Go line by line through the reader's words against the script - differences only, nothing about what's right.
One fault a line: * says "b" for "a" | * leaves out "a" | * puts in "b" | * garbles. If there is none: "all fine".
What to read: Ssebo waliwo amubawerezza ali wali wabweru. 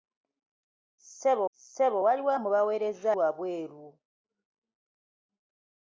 * puts in "ssebo"
* leaves out "ali wali"